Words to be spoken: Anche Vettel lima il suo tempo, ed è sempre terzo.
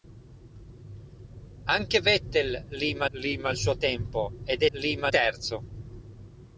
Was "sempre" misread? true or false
true